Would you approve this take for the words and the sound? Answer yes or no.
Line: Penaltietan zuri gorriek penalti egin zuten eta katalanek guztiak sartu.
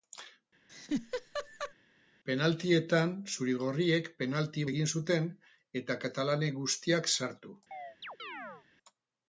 no